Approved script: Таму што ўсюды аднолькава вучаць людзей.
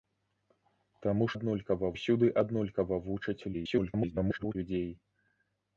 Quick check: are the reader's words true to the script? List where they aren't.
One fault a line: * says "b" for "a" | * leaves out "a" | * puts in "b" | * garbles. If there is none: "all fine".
* says "аднолькава" for "што"
* garbles